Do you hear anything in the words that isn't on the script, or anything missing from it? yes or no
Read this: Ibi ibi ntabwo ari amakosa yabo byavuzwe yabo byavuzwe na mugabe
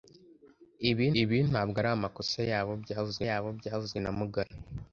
no